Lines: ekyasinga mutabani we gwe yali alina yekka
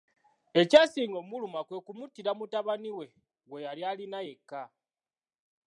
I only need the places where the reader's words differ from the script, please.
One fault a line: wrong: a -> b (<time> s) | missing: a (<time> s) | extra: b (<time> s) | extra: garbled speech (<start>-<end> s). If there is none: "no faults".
extra: okumuluma kwe kumuttira (1.2 s)